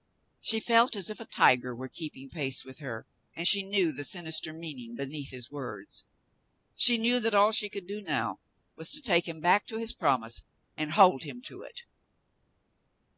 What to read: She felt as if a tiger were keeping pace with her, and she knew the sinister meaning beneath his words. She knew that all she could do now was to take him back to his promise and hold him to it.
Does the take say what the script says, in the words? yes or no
yes